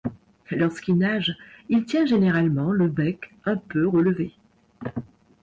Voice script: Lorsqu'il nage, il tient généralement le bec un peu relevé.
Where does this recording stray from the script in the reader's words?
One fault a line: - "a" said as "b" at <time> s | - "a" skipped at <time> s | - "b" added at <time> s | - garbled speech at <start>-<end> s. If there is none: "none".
none